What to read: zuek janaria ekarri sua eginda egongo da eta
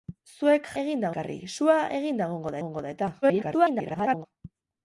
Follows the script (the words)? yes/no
no